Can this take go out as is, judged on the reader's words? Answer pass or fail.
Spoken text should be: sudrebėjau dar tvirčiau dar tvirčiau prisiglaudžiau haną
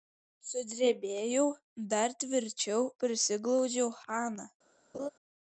fail